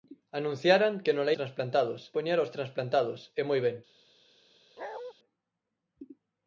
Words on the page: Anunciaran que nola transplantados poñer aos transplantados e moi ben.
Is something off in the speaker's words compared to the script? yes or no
no